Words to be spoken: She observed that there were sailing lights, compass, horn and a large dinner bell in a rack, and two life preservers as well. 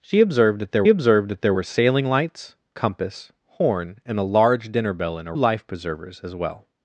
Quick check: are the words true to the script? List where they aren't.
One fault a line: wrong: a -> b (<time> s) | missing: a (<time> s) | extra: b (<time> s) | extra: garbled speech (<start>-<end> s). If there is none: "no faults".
extra: observed that there (0.9 s)
missing: rack and two (5.3 s)